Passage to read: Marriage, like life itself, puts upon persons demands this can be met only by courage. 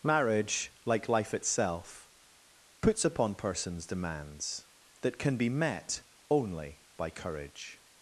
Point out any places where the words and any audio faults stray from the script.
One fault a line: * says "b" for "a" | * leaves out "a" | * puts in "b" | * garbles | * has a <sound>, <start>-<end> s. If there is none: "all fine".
* says "that" for "this"